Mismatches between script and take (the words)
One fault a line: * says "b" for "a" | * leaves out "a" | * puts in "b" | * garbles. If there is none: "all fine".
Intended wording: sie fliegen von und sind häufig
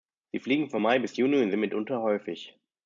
* puts in "mai bis juni"
* puts in "mitunter"